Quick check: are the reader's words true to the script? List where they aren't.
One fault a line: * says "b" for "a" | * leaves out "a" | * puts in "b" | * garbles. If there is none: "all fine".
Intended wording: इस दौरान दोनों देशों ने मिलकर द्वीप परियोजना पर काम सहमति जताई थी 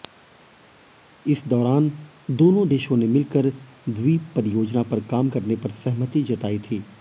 * puts in "करने पर"